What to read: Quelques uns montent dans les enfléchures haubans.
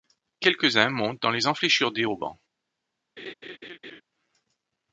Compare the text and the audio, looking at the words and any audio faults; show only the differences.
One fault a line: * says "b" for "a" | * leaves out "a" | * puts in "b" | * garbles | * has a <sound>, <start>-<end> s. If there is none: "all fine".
* puts in "des"
* has a laugh, 3.2-4.0 s